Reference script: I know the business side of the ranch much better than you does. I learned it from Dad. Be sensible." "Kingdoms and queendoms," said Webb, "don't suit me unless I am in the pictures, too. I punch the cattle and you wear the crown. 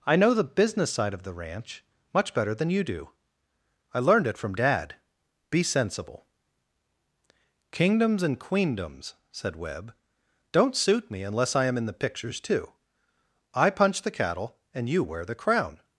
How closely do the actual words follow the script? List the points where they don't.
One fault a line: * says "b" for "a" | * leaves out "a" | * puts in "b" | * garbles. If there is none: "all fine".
* says "do" for "does"